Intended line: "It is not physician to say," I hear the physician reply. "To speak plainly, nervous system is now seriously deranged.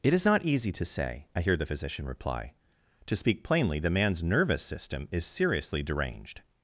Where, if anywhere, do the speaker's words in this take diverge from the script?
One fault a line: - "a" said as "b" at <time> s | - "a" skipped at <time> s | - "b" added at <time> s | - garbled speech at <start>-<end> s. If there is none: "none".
- "physician" said as "easy" at 0.4 s
- "the man's" added at 3.8 s
- "now" skipped at 5.2 s